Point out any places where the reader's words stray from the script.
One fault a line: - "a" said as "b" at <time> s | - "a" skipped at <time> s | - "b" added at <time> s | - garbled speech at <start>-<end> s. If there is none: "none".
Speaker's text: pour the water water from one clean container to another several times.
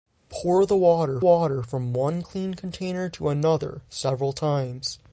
none